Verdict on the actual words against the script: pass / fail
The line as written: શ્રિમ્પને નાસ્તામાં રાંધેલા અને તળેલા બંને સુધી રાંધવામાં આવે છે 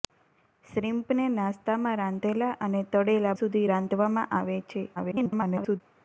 fail